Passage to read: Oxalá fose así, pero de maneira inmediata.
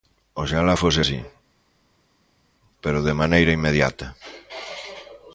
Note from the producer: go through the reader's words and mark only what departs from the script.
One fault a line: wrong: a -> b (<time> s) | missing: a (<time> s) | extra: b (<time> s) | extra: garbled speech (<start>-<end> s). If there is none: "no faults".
no faults